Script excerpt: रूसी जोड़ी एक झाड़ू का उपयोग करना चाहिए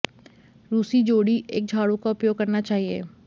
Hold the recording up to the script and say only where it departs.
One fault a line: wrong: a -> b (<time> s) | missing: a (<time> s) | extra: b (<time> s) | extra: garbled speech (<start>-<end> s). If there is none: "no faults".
no faults